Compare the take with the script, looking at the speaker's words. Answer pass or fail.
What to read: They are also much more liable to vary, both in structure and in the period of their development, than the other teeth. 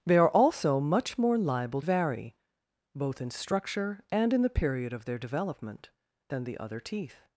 fail